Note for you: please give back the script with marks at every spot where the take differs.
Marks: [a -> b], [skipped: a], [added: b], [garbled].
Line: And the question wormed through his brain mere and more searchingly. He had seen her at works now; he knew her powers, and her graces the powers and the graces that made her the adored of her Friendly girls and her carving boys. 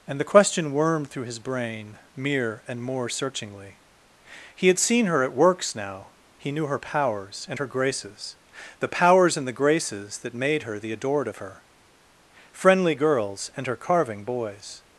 And the question wormed through his brain mere and more searchingly. He had seen her at works now; he knew her powers, and her graces the powers and the graces that made her the adored of her Friendly girls and her carving boys.